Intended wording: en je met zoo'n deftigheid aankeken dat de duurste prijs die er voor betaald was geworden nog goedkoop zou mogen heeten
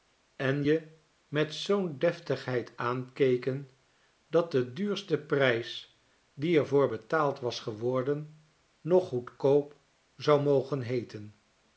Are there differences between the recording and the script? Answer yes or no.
no